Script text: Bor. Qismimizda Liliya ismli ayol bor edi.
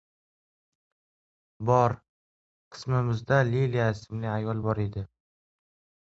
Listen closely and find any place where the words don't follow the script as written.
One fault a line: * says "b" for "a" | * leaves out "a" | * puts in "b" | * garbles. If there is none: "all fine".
all fine